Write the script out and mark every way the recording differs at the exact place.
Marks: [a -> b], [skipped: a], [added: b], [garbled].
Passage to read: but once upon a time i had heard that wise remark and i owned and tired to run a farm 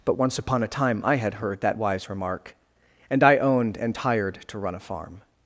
but once upon a time i had heard that wise remark and i owned and tired to run a farm